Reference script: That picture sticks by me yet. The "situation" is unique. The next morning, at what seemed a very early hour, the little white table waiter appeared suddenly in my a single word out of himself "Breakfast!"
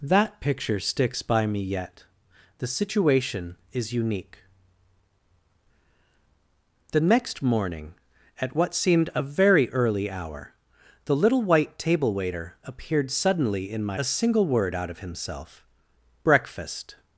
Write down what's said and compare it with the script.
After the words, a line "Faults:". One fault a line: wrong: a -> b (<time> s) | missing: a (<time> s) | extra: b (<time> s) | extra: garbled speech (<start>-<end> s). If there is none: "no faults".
That picture sticks by me yet. The "situation" is unique. The next morning, at what seemed a very early hour, the little white table waiter appeared suddenly in my a single word out of himself "Breakfast!"
Faults:
no faults